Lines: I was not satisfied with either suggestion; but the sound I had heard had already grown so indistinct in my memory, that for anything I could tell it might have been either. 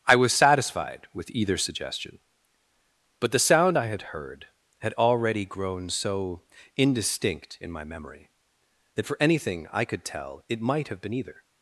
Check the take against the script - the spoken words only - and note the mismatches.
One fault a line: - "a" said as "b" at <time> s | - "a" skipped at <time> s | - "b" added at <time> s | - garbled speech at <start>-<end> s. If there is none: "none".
- "not" skipped at 0.3 s